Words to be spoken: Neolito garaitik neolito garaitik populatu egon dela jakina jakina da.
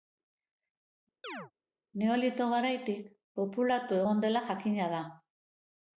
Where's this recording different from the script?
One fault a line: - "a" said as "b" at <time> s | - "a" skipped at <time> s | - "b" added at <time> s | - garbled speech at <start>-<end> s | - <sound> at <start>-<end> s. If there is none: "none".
- chirp at 1.2-1.5 s
- "neolito garaitik" skipped at 3.1 s
- "jakina" skipped at 4.9 s